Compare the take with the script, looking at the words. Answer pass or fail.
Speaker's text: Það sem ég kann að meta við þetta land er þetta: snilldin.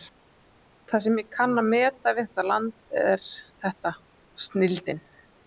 pass